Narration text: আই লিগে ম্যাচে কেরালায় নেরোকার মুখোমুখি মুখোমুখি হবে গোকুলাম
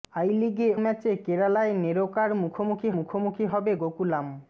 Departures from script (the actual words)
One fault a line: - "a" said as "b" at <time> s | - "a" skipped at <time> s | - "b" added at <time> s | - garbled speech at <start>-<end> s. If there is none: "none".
none